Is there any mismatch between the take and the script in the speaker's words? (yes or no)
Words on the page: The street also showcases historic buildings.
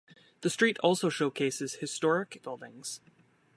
no